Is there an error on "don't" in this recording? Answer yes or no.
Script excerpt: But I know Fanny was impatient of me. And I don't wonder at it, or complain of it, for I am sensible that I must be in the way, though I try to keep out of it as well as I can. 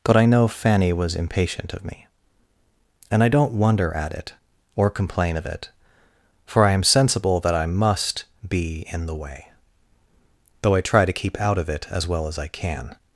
no